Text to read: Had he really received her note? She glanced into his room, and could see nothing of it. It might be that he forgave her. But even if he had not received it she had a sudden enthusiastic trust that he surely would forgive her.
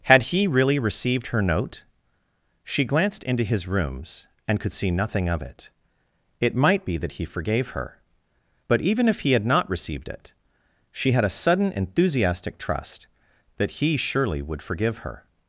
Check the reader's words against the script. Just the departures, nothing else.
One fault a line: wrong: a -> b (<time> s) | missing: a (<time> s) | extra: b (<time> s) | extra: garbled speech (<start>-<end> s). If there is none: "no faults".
wrong: room -> rooms (3.7 s)